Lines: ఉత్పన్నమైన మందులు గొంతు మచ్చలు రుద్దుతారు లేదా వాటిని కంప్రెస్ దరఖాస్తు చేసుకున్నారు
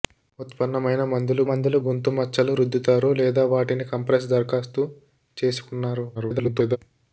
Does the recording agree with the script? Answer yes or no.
no